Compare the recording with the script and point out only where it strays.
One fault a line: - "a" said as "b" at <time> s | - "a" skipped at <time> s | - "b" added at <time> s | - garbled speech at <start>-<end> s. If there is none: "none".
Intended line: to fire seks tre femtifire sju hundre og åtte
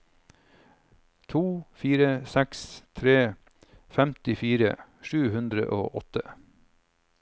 none